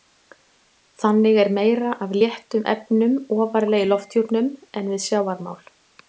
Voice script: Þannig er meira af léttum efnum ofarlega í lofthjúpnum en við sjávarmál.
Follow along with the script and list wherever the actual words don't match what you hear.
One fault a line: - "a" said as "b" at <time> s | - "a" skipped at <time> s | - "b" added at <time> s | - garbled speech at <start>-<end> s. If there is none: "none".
none